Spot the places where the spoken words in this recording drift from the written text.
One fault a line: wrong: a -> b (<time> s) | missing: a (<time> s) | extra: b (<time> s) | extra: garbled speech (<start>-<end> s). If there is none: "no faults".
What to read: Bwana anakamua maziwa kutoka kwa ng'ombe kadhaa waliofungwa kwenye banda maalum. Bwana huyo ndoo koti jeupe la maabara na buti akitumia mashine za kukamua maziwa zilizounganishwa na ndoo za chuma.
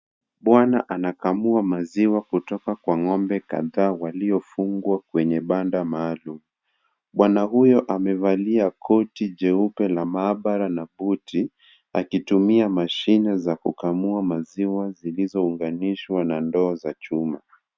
wrong: ndoo -> amevalia (7.8 s)